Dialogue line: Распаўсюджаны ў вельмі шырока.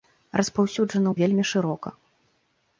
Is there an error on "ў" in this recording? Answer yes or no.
no